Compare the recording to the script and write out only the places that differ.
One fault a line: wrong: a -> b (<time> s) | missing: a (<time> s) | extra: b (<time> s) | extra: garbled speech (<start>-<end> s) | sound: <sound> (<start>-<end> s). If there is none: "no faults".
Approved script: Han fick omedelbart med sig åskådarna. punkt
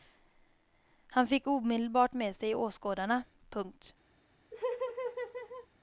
sound: laugh (4.5-5.7 s)